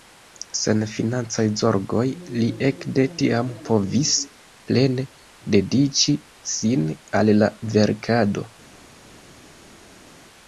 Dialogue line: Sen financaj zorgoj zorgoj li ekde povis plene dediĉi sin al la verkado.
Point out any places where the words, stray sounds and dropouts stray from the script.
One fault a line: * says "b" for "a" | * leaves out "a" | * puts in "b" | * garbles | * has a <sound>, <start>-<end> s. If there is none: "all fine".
* leaves out "zorgoj"
* puts in "tiam"